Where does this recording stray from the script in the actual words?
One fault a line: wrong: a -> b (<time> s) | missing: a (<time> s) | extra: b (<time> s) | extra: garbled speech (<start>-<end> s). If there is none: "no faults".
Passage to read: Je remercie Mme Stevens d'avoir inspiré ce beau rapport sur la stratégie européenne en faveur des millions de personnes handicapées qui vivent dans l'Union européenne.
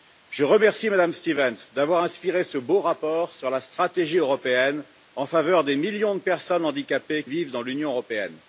missing: qui (7.2 s)